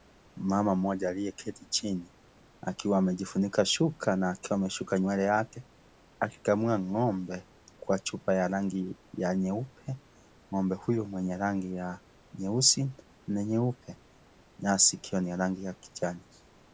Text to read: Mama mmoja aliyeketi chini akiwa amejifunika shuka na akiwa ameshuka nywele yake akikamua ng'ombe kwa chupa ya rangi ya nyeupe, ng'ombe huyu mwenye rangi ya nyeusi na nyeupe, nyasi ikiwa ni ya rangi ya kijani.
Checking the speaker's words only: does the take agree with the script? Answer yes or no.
yes